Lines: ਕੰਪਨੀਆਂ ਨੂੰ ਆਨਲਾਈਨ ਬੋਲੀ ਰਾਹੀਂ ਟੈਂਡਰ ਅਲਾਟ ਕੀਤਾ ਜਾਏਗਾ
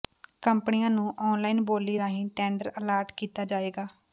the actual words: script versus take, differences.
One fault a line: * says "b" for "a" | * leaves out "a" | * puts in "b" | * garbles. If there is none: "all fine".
all fine